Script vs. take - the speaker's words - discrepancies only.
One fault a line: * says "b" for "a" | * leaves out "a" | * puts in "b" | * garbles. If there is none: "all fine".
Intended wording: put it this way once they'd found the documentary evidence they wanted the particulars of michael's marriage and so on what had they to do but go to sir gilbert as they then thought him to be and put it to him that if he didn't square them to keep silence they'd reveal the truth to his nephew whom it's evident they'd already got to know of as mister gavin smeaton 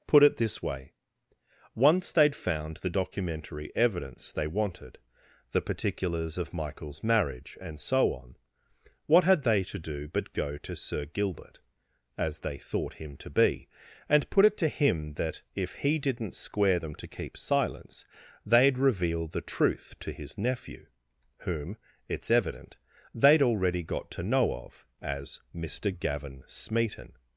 * leaves out "then"